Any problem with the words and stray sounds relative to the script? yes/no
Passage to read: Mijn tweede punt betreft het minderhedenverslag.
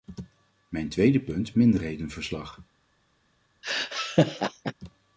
yes